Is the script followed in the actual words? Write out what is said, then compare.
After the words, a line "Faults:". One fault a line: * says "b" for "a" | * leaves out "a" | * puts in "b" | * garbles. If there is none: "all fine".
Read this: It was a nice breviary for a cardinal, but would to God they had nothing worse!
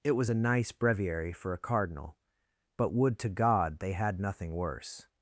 It was a nice breviary for a cardinal, but would to God they had nothing worse!
Faults:
all fine